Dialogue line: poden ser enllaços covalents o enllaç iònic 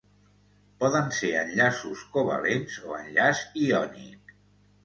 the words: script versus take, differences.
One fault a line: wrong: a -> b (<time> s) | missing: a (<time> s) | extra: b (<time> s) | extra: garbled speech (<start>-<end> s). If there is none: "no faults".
no faults